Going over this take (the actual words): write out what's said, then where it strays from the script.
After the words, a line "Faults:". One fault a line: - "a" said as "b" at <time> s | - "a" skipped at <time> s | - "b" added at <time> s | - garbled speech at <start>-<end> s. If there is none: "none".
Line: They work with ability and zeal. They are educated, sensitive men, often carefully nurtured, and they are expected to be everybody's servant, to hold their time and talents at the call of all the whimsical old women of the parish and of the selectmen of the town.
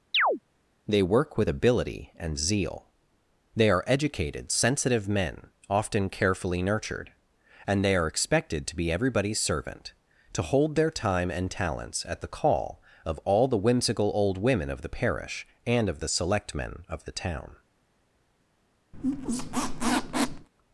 They work with ability and zeal. They are educated, sensitive men, often carefully nurtured, and they are expected to be everybody's servant, to hold their time and talents at the call of all the whimsical old women of the parish and of the selectmen of the town.
Faults:
none